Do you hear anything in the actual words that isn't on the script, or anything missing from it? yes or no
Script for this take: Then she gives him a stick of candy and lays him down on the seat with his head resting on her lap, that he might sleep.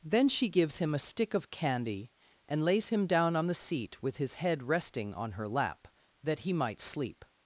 no